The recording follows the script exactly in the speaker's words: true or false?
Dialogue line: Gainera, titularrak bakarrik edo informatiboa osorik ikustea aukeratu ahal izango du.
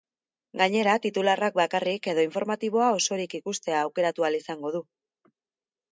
true